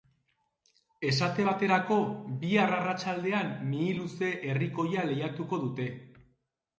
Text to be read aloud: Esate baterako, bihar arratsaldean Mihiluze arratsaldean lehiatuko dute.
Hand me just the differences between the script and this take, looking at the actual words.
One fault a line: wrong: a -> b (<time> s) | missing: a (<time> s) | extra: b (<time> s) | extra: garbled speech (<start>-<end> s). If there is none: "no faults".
wrong: arratsaldean -> herrikoia (4.5 s)